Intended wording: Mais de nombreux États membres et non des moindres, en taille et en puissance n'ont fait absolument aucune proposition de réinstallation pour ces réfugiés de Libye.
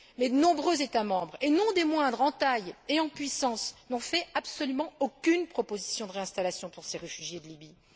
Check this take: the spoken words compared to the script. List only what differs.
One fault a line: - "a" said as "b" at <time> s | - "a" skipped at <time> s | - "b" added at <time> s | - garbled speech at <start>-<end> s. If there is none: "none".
none